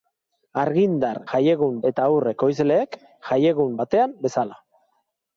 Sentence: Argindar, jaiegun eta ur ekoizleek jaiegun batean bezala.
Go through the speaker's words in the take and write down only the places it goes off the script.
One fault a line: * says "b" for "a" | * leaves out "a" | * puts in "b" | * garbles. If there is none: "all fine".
all fine